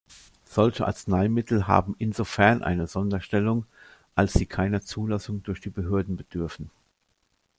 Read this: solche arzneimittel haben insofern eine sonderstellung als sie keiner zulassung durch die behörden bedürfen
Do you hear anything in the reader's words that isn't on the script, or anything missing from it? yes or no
no